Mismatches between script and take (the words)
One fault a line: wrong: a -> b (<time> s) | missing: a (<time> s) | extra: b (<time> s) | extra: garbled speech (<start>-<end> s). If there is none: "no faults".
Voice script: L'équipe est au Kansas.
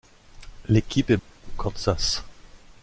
no faults